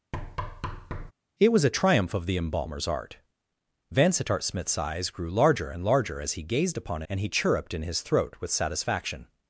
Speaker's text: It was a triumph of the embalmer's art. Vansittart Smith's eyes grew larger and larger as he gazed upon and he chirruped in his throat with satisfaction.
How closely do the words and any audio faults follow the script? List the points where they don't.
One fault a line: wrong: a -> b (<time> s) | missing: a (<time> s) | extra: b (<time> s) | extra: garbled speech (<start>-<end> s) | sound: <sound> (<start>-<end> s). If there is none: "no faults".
sound: thud (0.1-1.1 s)